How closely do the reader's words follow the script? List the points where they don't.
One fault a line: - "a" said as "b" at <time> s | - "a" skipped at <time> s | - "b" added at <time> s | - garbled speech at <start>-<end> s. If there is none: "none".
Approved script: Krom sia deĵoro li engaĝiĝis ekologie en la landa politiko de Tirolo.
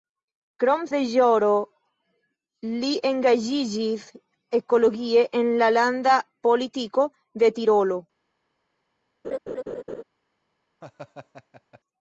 - "sia" skipped at 0.8 s